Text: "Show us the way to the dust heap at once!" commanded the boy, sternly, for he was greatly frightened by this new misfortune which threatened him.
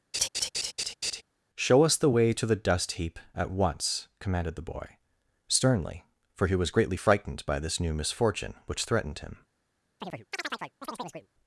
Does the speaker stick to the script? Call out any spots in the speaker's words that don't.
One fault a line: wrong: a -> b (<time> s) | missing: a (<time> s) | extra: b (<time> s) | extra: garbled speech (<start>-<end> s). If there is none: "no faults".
no faults